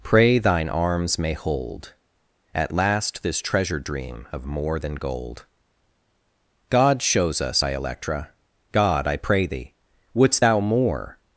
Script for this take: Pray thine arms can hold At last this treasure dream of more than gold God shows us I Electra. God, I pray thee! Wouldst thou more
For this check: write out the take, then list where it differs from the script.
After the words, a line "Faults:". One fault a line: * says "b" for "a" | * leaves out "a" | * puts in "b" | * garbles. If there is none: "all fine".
Pray thine arms may hold At last this treasure dream of more than gold God shows us I Electra. God, I pray thee! Wouldst thou more
Faults:
* says "may" for "can"